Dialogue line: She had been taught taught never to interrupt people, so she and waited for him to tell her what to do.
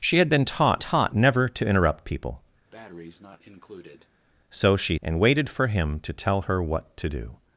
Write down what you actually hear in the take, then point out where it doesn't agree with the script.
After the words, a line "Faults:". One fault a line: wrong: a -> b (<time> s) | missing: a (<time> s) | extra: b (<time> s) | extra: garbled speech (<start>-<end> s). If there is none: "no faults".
She had been taught taught never to interrupt people, so she and waited for him to tell her what to do.
Faults:
no faults